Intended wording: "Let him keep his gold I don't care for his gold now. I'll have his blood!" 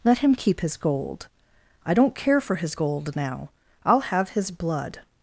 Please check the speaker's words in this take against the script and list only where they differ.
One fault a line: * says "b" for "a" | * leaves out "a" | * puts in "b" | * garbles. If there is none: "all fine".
all fine